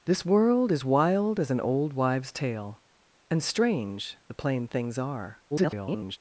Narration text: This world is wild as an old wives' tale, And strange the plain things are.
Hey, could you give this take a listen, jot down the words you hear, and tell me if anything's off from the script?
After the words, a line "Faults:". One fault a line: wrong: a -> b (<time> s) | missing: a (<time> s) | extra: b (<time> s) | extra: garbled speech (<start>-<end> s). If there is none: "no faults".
This world is wild as an old wives' tale, And strange the plain things are. [garbled]
Faults:
extra: garbled speech (5.5-6.2 s)